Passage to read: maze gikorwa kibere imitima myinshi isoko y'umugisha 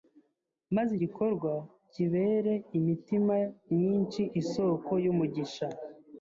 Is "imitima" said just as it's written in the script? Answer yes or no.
yes